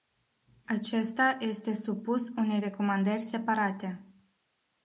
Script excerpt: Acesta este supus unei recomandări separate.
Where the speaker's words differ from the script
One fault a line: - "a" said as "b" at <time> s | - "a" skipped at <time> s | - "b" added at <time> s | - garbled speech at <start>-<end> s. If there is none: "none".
none